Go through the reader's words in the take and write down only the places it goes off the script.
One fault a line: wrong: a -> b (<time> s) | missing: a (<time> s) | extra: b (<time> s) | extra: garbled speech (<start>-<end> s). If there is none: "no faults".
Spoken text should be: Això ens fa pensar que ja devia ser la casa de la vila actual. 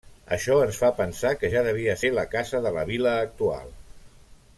no faults